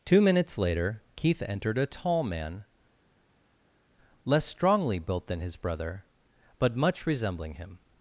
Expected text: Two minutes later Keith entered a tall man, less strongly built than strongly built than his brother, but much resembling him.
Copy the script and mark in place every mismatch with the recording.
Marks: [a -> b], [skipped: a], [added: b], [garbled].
Two minutes later Keith entered a tall man, less strongly built than [skipped: strongly built than] his brother, but much resembling him.